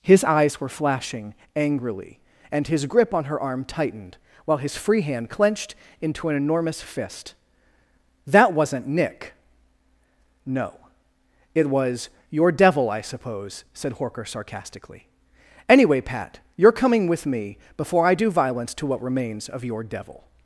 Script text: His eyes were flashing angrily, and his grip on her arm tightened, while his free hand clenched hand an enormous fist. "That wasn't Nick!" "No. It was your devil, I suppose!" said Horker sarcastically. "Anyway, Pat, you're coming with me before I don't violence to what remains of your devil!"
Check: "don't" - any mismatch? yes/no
yes